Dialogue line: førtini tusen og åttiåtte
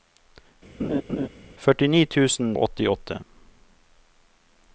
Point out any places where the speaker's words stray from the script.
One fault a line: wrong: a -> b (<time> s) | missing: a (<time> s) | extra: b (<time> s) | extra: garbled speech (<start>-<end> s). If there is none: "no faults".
no faults